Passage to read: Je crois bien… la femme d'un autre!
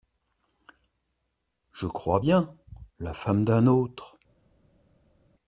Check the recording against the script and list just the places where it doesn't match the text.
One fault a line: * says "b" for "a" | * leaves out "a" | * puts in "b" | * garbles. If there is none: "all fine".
all fine